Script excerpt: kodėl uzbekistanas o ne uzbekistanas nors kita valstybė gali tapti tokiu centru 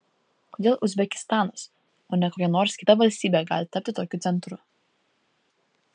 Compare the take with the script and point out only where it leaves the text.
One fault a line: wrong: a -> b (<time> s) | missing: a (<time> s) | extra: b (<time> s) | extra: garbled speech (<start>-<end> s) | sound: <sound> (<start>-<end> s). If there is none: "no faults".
wrong: uzbekistanas -> kokia (2.3 s)